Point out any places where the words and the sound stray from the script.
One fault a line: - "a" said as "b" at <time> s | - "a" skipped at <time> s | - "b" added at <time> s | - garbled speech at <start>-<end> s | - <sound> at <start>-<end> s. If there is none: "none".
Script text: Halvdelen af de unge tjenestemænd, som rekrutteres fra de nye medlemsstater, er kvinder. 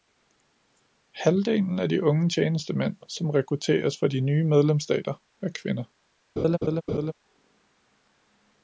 - laugh at 6.4-7.1 s